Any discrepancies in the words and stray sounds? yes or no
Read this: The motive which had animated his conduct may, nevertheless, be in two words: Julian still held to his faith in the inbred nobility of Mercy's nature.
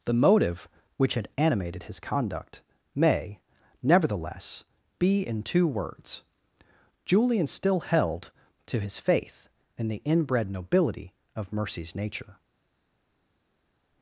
no